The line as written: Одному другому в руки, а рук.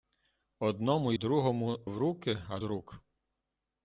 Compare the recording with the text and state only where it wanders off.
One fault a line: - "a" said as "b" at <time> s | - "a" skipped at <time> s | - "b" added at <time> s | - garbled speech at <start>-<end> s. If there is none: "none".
none